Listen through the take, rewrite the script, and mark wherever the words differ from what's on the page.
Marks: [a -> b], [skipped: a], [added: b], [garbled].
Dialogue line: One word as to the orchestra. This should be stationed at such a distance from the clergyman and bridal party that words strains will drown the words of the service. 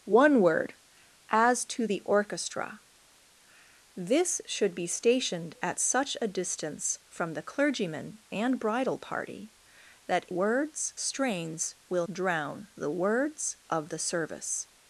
One word as to the orchestra. This should be stationed at such a distance from the clergyman and bridal party that words strains will drown the words of the service.